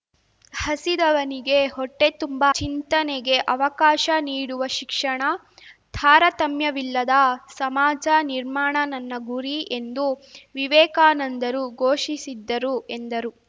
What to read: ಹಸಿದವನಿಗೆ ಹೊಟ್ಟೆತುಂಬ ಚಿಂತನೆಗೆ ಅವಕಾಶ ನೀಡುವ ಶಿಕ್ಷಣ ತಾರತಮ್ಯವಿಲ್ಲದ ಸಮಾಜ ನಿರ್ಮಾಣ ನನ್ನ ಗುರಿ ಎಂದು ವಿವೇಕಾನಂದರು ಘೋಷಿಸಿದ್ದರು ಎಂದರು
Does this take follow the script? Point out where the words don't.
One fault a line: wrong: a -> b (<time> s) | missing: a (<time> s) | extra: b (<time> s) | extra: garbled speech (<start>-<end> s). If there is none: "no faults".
no faults